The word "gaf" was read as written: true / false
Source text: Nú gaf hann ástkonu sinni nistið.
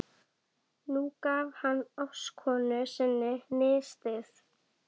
true